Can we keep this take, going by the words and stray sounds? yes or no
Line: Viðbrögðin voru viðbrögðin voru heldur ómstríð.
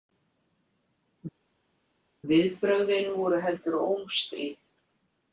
no